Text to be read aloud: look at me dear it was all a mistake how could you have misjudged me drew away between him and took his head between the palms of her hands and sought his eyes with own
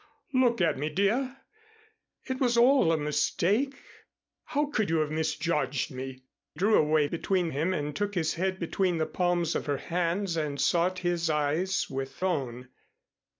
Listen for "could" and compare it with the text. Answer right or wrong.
right